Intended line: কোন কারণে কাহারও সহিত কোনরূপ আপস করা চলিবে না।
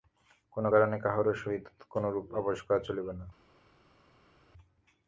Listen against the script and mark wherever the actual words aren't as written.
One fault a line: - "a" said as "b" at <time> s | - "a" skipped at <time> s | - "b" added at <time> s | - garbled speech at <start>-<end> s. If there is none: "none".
none